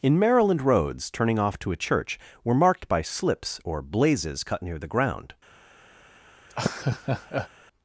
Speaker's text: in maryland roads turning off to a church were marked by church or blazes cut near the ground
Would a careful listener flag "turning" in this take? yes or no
no